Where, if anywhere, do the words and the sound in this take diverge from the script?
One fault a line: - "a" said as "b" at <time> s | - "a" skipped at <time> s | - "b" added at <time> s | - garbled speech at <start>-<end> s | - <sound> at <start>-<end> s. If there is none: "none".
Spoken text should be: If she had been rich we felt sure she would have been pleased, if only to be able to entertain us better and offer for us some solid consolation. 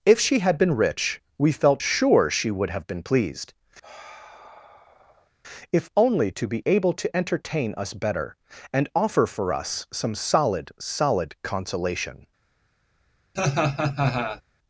- sigh at 3.8-5.3 s
- "solid" added at 10.8 s
- laugh at 13.4-14.4 s